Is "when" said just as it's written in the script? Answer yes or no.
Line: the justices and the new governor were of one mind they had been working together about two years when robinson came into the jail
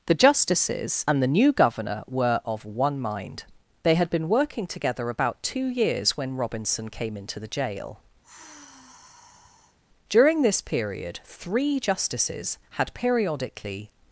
yes